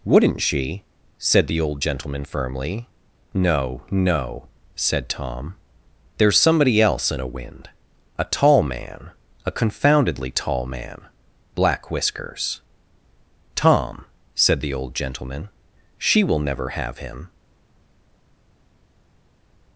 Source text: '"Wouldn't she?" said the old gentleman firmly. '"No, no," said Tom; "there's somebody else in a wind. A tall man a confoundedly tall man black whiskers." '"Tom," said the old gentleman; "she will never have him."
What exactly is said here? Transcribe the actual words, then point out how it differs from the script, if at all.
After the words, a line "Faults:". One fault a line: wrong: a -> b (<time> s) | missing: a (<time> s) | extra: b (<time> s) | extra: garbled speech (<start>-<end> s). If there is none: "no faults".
'"Wouldn't she?" said the old gentleman firmly. '"No, no," said Tom; "there's somebody else in a wind. A tall man a confoundedly tall man black whiskers." '"Tom," said the old gentleman; "she will never have him."
Faults:
no faults